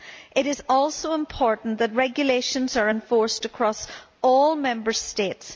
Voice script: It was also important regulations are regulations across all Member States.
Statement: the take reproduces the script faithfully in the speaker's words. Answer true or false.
false